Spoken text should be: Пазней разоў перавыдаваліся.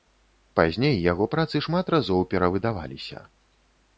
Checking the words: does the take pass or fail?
fail